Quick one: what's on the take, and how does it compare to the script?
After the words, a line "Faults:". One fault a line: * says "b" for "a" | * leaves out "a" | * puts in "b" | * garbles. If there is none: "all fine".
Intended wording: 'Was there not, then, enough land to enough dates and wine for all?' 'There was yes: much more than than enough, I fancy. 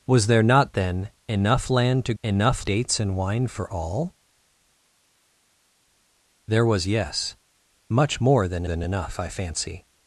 'Was there not, then, enough land to enough dates and wine for all?' 'There was yes: much more than than enough, I fancy.
Faults:
all fine